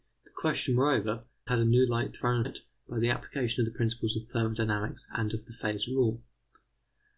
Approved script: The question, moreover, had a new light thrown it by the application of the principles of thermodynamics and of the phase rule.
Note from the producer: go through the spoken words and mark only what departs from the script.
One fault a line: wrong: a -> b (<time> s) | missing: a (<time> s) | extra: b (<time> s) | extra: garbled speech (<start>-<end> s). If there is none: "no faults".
no faults